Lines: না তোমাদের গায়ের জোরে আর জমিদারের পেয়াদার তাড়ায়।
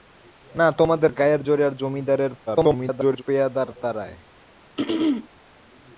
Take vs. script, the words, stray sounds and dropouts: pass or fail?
fail